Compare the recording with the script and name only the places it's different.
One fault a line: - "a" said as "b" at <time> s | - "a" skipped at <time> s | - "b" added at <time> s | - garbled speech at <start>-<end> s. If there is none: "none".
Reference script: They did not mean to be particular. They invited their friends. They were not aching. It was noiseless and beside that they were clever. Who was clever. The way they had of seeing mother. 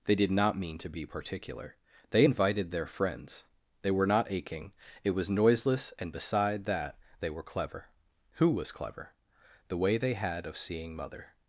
none